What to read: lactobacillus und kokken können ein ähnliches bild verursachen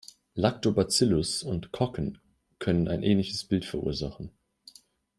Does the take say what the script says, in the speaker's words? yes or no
yes